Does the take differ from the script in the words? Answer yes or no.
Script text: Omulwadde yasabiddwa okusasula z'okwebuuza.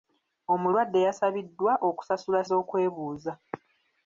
no